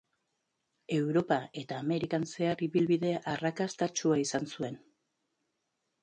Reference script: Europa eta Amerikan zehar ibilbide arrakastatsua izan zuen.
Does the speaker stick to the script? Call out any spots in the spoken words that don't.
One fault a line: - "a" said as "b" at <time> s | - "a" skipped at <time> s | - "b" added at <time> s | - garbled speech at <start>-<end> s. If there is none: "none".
none